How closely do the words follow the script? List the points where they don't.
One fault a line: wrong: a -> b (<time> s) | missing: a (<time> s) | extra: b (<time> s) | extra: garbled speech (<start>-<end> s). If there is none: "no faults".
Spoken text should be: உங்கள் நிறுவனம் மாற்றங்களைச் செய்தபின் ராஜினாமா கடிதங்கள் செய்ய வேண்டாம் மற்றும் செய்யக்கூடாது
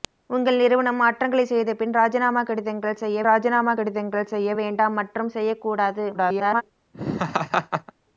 extra: ராஜினாமா கடிதங்கள் செய்ய (3.3 s)
extra: garbled speech (6.1-6.6 s)